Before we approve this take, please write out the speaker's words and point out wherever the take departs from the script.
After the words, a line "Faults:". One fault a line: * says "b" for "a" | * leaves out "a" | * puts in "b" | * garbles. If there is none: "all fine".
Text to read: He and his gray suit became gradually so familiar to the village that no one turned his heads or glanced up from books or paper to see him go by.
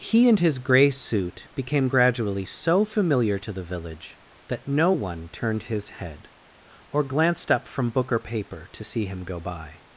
He and his gray suit became gradually so familiar to the village that no one turned his head or glanced up from book or paper to see him go by.
Faults:
* says "head" for "heads"
* says "book" for "books"